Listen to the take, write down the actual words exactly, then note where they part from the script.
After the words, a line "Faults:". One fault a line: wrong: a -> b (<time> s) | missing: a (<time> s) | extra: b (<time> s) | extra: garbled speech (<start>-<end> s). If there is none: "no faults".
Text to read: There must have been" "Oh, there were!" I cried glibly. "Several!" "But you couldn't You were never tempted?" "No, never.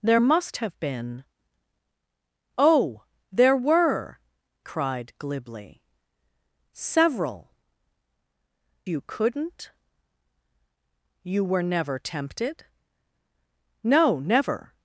There must have been" "Oh, there were!" cried glibly. "Several!" "You couldn't You were never tempted?" "No, never.
Faults:
missing: I (4.2 s)
missing: But (7.5 s)